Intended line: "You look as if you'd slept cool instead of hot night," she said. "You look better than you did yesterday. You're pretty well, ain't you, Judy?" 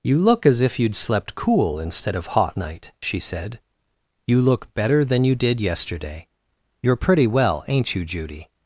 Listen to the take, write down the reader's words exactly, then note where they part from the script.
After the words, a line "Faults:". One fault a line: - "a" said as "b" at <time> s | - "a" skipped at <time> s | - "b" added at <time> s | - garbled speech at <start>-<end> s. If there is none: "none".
"You look as if you'd slept cool instead of hot night," she said. "You look better than you did yesterday. You're pretty well, ain't you, Judy?"
Faults:
none